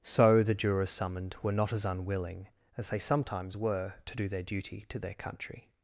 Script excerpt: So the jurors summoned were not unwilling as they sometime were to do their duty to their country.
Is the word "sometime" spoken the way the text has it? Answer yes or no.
no